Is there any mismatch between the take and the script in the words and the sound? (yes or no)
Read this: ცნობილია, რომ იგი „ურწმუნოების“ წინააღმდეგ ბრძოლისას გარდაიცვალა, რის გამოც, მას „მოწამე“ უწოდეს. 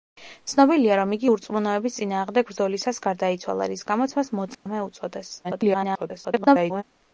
yes